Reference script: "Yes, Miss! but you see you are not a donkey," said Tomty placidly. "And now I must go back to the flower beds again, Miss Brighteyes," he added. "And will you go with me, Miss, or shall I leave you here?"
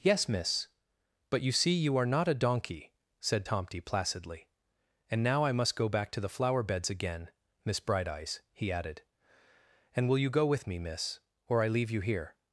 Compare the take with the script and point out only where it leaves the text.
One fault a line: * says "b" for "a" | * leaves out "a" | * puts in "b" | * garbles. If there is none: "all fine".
* leaves out "shall"